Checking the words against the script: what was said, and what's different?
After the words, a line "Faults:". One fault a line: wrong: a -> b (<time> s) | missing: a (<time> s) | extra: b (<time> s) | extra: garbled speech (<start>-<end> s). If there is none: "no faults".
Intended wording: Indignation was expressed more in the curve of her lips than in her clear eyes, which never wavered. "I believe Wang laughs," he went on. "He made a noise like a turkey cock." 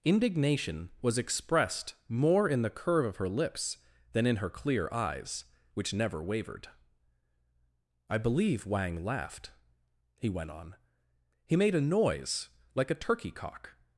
Indignation was expressed more in the curve of her lips than in her clear eyes, which never wavered. "I believe Wang laughed," he went on. "He made a noise like a turkey cock."
Faults:
wrong: laughs -> laughed (9.0 s)